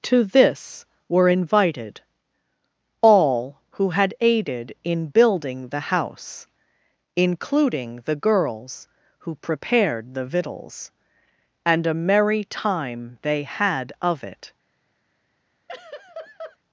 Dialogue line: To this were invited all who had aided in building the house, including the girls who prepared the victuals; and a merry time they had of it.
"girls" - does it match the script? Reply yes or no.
yes